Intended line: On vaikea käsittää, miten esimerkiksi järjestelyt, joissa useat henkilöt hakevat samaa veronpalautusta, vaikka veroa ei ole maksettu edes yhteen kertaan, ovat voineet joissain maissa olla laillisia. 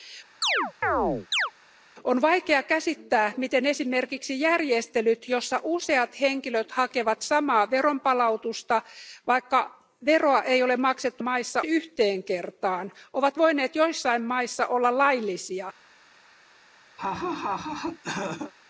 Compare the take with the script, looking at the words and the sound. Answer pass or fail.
fail